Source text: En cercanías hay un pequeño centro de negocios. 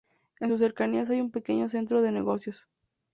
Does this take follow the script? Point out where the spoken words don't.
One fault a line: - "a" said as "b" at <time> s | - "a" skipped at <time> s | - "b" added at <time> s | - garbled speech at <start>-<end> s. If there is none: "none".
- "sus" added at 0.5 s